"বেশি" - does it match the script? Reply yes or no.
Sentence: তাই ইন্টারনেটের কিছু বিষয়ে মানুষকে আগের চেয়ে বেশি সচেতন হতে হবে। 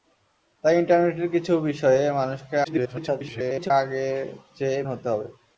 no